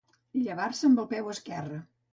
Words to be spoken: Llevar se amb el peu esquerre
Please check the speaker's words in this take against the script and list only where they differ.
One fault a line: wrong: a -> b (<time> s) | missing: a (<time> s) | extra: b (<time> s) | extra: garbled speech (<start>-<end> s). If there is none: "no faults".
no faults